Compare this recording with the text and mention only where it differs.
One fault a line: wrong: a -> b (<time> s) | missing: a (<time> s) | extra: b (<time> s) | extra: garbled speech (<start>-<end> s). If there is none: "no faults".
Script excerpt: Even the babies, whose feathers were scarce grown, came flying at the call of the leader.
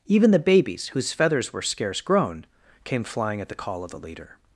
no faults